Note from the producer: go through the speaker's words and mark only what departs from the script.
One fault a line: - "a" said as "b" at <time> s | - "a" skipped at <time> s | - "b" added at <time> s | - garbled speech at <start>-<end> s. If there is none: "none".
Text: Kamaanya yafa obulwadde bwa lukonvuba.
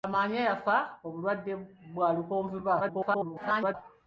- garbled speech at 2.8-3.7 s